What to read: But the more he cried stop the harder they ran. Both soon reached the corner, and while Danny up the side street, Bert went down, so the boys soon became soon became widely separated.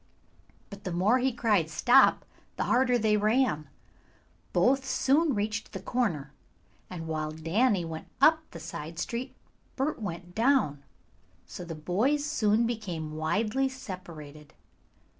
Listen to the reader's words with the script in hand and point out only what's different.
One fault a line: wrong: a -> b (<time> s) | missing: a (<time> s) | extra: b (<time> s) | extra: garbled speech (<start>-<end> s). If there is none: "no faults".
extra: went (7.8 s)
missing: soon became (13.1 s)